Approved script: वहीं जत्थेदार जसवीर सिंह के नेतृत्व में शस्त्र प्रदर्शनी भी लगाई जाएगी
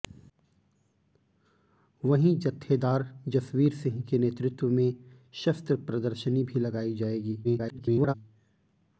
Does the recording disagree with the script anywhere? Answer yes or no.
yes